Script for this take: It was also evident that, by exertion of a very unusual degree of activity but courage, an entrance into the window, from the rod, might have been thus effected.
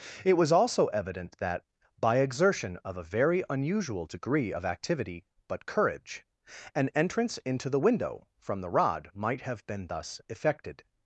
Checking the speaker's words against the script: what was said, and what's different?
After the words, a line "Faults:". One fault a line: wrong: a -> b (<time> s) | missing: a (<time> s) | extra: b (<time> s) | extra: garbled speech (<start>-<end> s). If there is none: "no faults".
It was also evident that, by exertion of a very unusual degree of activity but courage, an entrance into the window, from the rod, might have been thus effected.
Faults:
no faults